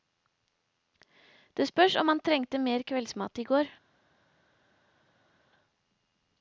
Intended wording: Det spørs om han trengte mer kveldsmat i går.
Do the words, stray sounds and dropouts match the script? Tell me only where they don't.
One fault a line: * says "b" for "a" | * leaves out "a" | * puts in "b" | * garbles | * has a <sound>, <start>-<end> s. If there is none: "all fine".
all fine